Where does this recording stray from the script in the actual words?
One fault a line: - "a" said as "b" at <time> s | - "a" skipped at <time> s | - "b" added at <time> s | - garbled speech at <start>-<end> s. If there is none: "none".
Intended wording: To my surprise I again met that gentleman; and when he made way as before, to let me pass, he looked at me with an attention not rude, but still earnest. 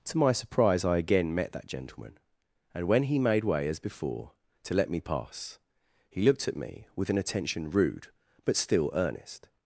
- "not" skipped at 7.7 s